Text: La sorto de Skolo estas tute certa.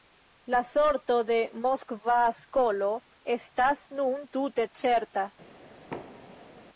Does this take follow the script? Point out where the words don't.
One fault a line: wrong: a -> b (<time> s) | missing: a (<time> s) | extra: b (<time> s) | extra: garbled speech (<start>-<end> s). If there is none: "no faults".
extra: Moskva (1.6 s)
extra: nun (4.0 s)